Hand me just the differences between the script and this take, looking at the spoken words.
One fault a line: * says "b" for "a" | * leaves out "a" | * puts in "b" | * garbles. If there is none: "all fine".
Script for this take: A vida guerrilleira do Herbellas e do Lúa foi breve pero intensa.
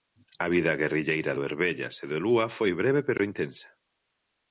all fine